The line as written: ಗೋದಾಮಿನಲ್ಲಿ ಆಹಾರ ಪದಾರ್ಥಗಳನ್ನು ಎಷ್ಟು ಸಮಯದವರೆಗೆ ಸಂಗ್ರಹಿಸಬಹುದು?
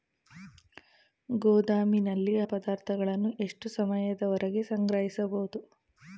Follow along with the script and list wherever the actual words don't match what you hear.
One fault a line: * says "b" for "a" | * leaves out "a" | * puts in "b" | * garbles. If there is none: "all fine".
* leaves out "ಆಹಾರ"